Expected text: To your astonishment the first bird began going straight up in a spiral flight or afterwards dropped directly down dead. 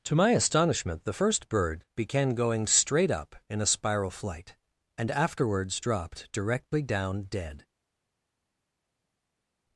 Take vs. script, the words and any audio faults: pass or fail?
fail